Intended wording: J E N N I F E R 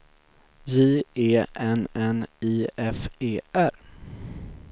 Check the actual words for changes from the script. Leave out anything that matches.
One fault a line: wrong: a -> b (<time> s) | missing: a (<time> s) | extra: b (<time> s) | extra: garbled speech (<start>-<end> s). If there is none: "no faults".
no faults